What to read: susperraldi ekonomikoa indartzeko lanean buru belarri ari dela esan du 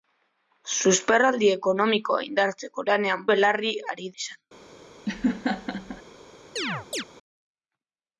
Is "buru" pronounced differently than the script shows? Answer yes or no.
yes